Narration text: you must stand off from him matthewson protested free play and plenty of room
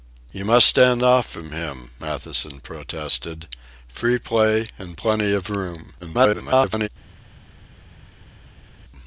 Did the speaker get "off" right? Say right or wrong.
right